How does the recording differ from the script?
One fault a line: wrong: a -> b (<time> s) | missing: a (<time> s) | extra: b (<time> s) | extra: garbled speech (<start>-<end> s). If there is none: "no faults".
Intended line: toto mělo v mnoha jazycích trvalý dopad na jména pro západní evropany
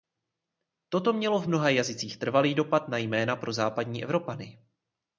no faults